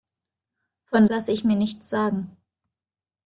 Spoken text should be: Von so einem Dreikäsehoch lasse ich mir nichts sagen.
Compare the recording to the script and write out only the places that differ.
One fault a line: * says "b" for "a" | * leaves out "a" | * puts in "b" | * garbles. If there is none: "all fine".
* leaves out "so einem Dreikäsehoch"